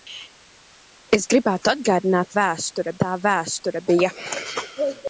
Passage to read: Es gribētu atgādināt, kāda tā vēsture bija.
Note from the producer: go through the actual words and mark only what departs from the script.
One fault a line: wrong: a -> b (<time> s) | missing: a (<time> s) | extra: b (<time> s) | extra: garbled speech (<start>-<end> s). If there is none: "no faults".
wrong: kāda -> vēsture (2.4 s)